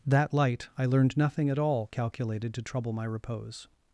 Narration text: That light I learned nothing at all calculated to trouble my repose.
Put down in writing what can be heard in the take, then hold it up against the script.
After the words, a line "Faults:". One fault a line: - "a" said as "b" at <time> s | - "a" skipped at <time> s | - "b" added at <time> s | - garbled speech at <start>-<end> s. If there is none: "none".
That light I learned nothing at all calculated to trouble my repose.
Faults:
none